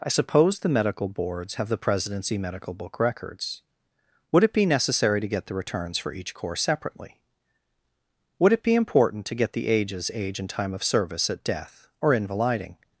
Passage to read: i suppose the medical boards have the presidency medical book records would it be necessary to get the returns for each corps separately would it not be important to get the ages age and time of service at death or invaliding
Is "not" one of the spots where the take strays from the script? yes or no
yes